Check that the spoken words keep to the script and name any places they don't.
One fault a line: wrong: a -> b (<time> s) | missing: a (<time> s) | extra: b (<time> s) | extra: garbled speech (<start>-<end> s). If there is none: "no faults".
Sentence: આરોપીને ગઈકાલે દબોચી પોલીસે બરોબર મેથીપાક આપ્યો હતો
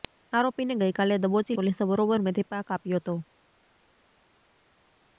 no faults